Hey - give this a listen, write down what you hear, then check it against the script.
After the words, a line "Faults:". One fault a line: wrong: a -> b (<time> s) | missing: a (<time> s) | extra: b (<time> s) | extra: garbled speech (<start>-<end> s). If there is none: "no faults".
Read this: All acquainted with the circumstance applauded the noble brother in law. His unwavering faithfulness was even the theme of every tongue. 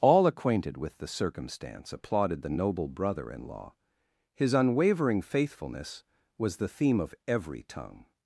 All acquainted with the circumstance applauded the noble brother in law. His unwavering faithfulness was the theme of every tongue.
Faults:
missing: even (6.6 s)